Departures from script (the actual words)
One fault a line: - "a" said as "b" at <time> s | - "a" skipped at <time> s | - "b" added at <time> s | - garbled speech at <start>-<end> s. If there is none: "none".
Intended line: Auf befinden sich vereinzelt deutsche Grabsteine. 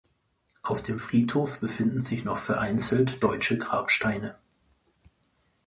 - "dem Friedhof" added at 0.8 s
- "noch" added at 2.2 s